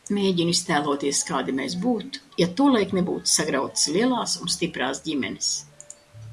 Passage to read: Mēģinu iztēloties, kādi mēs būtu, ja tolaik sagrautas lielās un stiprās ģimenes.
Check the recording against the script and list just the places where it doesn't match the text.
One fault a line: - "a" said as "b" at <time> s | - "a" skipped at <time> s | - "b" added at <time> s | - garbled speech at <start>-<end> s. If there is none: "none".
- "nebūtu" added at 3.0 s